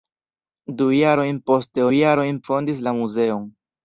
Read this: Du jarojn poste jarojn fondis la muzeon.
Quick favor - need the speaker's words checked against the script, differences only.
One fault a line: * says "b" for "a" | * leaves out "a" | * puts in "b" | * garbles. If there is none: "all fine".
all fine